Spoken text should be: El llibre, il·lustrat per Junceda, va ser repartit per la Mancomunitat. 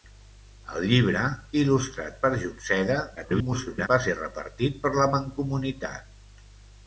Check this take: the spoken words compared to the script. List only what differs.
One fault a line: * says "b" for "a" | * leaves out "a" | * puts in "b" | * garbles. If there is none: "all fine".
* garbles